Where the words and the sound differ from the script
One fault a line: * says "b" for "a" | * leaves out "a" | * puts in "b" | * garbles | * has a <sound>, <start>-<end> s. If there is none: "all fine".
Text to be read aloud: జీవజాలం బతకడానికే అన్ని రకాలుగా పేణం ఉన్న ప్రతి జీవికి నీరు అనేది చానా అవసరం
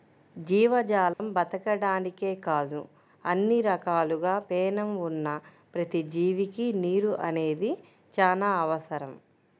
* has a dropout, 1.1-1.2 s
* puts in "కాదు"